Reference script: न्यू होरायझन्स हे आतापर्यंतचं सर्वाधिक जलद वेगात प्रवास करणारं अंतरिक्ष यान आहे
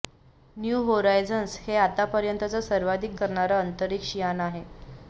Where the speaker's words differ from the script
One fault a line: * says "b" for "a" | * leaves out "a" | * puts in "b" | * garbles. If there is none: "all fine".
* leaves out "जलद वेगात प्रवास"